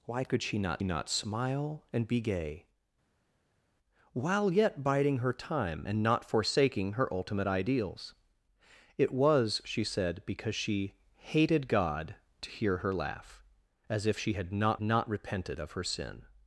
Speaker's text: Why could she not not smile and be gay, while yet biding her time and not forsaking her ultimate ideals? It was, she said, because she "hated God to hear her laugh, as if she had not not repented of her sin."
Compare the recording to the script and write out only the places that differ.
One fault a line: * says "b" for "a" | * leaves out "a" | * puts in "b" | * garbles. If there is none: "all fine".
all fine